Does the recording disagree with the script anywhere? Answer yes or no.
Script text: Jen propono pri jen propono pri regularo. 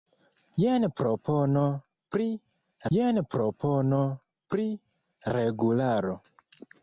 no